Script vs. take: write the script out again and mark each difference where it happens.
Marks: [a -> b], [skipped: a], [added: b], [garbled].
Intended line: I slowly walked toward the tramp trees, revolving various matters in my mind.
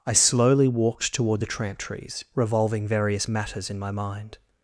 I slowly walked toward the tramp trees, revolving various matters in my mind.